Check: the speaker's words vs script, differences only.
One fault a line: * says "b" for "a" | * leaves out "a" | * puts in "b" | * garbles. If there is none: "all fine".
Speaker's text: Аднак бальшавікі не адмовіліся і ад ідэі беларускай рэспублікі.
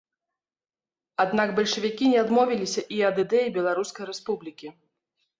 all fine